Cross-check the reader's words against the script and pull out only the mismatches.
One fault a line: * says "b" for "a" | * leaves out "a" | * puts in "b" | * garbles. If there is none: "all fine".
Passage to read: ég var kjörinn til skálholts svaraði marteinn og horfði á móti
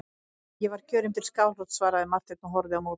all fine